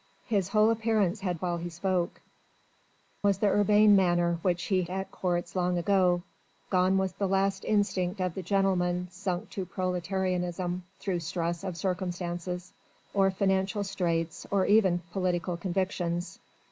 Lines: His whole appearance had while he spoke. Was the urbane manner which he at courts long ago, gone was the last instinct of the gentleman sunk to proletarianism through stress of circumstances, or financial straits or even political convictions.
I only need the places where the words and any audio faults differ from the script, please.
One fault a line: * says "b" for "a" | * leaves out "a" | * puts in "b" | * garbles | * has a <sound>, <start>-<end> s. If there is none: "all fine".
all fine